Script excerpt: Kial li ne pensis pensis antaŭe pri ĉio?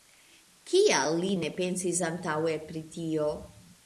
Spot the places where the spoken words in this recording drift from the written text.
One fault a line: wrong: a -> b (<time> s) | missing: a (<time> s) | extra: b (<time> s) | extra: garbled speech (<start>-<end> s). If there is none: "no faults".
missing: pensis (2.0 s)
wrong: ĉio -> tio (2.9 s)